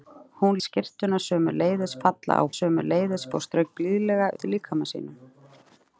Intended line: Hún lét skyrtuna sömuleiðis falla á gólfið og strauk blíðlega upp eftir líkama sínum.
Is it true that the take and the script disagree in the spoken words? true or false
true